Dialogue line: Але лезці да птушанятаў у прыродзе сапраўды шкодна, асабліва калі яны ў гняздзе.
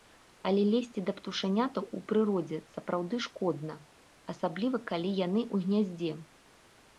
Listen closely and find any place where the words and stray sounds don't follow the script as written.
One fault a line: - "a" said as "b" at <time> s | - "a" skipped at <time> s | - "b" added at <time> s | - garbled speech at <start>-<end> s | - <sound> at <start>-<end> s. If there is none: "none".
none